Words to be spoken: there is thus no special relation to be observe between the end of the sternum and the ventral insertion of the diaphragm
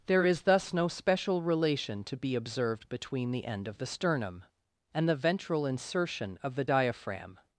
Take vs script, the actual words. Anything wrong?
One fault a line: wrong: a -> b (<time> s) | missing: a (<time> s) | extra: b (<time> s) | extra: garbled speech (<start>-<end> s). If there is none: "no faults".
wrong: observe -> observed (2.3 s)